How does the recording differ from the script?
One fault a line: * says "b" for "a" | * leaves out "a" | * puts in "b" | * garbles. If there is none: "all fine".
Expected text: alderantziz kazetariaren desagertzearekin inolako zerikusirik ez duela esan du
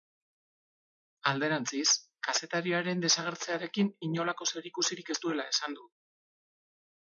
all fine